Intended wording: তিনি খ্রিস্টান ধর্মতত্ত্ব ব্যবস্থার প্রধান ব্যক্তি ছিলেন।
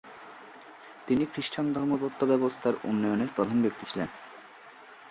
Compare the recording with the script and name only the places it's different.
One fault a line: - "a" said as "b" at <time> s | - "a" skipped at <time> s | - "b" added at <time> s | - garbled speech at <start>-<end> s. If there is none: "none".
- "উন্নয়নের" added at 2.8 s